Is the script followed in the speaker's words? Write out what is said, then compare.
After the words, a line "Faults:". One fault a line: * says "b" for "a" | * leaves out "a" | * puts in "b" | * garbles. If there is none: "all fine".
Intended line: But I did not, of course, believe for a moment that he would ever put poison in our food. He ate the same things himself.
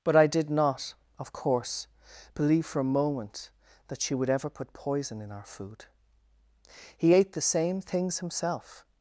But I did not, of course, believe for a moment that she would ever put poison in our food. He ate the same things himself.
Faults:
* says "she" for "he"